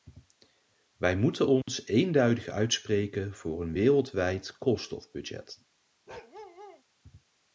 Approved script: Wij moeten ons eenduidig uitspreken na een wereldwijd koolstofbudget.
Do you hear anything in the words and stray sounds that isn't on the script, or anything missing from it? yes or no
yes